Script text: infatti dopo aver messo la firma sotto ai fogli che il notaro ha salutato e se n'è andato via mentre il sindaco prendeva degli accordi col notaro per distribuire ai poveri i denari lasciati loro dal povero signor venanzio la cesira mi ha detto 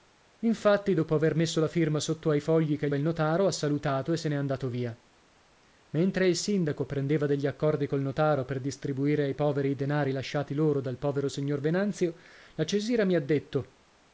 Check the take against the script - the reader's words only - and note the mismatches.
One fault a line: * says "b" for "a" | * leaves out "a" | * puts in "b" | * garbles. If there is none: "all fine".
all fine